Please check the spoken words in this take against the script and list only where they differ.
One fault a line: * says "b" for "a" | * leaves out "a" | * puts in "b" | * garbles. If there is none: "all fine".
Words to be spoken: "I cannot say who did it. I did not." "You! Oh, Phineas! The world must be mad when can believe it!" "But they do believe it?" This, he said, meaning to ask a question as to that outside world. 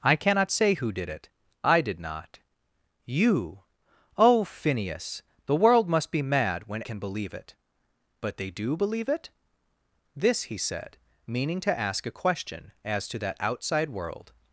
all fine